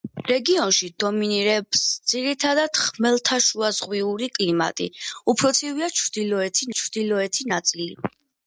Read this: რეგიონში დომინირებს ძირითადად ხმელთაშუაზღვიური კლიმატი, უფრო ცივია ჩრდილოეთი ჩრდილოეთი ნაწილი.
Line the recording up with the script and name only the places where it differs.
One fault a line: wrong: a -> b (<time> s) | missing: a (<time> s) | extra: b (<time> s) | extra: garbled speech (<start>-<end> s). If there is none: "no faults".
no faults